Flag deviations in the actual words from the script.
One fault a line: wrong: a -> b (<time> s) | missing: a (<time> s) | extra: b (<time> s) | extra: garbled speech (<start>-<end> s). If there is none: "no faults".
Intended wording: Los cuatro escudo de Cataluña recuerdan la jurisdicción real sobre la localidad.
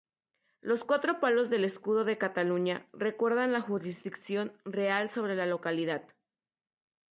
extra: palos del (1.2 s)